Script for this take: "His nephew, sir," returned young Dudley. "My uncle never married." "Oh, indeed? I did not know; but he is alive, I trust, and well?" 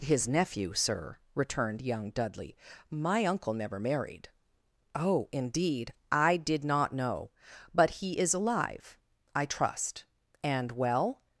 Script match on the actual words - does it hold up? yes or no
yes